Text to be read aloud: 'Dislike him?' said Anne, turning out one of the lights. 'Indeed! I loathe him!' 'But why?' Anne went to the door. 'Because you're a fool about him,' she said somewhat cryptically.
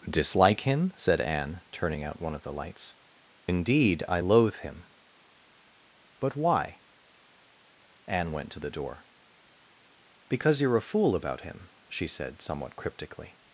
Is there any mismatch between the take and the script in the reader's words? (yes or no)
no